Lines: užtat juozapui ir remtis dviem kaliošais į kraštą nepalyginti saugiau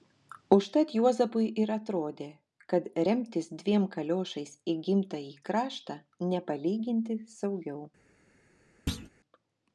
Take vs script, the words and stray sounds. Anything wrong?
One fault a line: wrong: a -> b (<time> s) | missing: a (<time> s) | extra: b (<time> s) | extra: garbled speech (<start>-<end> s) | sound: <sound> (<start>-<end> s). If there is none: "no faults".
extra: atrodė kad (1.8 s)
extra: gimtąjį (4.9 s)
sound: thud (8.9-9.1 s)